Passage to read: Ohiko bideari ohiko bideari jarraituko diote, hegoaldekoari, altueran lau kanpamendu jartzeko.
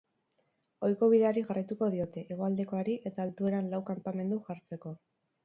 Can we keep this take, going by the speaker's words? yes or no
no